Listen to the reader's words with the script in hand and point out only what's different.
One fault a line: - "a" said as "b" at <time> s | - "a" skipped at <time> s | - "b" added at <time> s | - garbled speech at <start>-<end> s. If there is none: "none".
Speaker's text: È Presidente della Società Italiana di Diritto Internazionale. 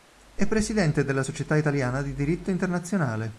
none